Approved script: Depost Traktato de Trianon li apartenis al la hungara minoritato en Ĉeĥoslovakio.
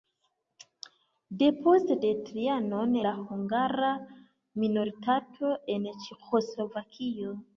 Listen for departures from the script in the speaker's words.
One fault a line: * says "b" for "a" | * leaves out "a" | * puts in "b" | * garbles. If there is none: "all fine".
* leaves out "Traktato"
* leaves out "li apartenis al"